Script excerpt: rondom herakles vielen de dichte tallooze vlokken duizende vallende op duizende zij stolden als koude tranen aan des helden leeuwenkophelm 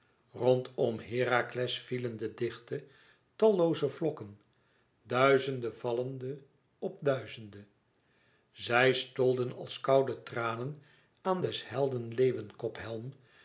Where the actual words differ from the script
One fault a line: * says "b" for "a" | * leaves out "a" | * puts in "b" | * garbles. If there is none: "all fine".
all fine